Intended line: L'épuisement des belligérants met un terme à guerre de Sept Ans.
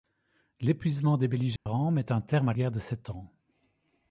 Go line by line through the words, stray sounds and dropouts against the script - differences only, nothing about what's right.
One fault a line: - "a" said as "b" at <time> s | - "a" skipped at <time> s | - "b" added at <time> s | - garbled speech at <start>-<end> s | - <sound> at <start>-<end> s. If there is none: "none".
- dropout at 1.6-1.7 s